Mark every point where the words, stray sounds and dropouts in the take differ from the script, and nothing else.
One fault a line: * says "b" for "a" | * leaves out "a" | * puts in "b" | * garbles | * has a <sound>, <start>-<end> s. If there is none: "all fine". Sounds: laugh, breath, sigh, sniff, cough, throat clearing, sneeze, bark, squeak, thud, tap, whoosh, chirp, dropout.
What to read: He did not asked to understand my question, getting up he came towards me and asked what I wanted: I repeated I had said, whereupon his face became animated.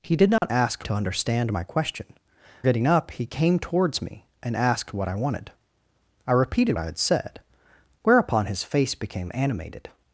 * has a dropout, 0.4-0.4 s